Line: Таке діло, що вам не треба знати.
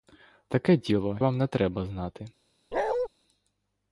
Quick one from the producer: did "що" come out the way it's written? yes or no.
no